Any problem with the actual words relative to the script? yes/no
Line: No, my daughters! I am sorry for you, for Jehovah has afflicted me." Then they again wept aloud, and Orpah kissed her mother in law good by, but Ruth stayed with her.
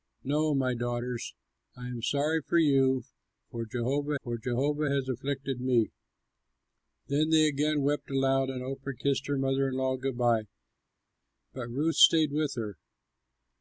yes